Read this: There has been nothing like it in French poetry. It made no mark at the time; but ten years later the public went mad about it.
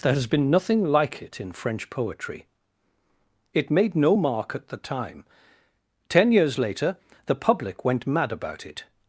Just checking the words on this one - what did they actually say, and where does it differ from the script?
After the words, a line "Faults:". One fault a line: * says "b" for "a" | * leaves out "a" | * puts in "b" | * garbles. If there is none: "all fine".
There has been nothing like it in French poetry. It made no mark at the time; ten years later the public went mad about it.
Faults:
* leaves out "but"